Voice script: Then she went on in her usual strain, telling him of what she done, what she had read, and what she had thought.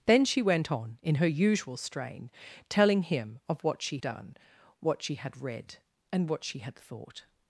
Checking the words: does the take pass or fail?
pass